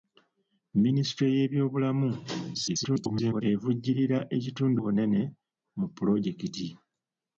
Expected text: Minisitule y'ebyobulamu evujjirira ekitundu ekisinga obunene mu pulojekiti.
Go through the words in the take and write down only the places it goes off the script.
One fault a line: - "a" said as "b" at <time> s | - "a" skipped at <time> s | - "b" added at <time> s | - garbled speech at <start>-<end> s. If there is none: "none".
- garbled speech at 2.5-3.4 s
- "ekisinga" skipped at 4.8 s